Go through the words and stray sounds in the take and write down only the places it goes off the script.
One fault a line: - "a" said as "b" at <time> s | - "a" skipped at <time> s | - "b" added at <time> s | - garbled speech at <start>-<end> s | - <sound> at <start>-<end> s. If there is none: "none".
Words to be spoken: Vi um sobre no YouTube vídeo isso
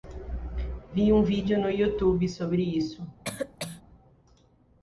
- "sobre" said as "vídeo" at 1.2 s
- "vídeo" said as "sobre" at 2.3 s
- cough at 3.2-3.8 s